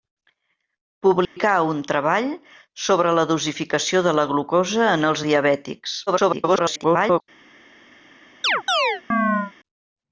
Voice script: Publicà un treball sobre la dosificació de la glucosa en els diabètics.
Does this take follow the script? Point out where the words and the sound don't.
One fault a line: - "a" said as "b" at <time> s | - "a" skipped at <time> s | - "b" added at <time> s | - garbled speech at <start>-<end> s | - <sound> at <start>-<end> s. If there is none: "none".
- dropout at 1.2-1.4 s
- garbled speech at 6.1-7.2 s
- chirp at 8.4-9.5 s